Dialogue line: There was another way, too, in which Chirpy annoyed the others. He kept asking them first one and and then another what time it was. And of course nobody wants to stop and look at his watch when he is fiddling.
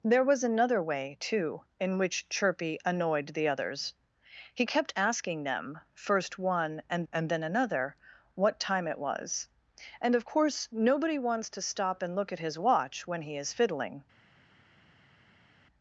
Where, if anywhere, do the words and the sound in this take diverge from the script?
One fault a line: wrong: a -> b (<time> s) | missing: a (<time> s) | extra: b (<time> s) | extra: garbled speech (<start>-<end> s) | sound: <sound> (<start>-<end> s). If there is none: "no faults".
no faults